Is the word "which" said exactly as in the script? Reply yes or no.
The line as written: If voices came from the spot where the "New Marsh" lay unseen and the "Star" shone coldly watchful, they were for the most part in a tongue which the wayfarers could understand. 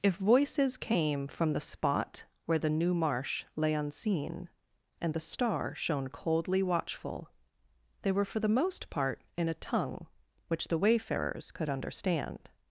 yes